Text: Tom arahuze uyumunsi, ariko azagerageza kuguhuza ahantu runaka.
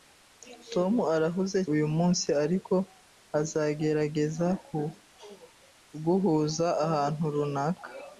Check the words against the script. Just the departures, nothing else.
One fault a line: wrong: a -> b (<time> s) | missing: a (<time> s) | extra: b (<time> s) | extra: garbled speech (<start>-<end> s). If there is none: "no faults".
no faults